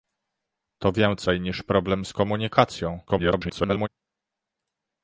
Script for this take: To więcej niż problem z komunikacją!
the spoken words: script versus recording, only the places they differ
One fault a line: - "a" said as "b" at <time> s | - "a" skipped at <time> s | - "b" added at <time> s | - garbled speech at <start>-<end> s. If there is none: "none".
- garbled speech at 3.1-3.9 s